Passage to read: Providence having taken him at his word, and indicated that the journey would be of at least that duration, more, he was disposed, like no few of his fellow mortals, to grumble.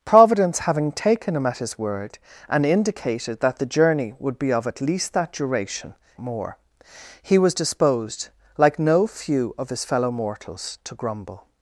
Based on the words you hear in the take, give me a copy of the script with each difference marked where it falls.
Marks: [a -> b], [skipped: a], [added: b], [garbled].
Providence having taken him at his word, and indicated that the journey would be of at least that duration, more, he was disposed, like no few of his fellow mortals, to grumble.